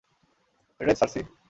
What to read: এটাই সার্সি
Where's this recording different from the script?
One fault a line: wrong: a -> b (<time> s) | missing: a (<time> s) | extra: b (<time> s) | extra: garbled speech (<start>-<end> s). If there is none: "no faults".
no faults